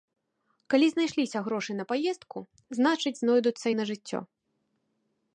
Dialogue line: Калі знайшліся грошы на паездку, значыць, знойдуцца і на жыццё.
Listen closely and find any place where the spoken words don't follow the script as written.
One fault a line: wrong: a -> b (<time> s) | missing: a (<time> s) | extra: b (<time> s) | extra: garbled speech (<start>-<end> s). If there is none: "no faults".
no faults